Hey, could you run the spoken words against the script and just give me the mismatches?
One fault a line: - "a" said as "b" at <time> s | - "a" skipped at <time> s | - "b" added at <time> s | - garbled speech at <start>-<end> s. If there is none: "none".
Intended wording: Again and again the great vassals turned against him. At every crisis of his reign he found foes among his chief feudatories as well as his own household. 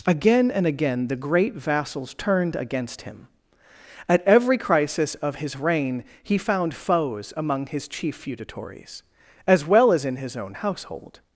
- "in" added at 10.1 s